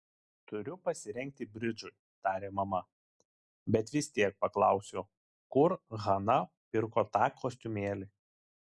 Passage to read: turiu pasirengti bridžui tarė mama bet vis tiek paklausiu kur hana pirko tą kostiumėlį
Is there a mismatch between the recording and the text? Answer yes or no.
no